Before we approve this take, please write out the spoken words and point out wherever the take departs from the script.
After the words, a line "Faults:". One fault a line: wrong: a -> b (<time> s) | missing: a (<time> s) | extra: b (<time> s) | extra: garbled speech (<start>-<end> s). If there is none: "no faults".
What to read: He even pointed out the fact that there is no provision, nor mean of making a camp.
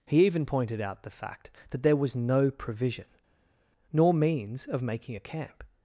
He even pointed out the fact that there was no provision, nor means of making a camp.
Faults:
wrong: is -> was (2.0 s)
wrong: mean -> means (4.1 s)